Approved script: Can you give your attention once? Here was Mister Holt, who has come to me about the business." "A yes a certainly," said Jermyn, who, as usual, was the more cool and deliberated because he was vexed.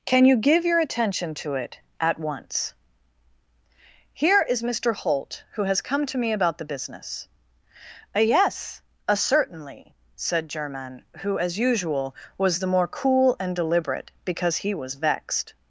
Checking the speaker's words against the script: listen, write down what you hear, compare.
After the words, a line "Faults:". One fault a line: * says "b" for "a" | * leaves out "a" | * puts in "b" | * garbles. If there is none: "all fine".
Can you give your attention to it at once? Here is Mister Holt, who has come to me about the business." "A yes a certainly," said Jermyn, who, as usual, was the more cool and deliberate because he was vexed.
Faults:
* puts in "to it at"
* says "is" for "was"
* says "deliberate" for "deliberated"